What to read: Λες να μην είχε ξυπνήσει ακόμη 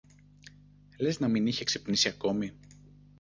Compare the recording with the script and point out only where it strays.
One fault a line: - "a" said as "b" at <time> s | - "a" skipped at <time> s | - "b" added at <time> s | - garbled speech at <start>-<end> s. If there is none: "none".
none